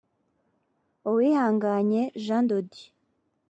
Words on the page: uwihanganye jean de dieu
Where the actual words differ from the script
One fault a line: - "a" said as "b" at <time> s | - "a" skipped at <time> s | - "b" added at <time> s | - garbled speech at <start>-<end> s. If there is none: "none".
none